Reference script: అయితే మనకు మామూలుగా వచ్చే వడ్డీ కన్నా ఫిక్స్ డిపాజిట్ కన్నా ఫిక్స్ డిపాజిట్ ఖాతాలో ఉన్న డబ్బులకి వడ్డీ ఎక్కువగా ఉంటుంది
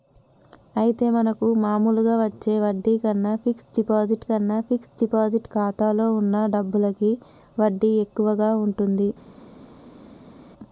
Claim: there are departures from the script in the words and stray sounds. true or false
false